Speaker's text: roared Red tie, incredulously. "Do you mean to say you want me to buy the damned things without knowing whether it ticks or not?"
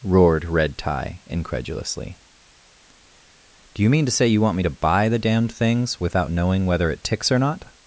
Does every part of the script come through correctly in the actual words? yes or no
yes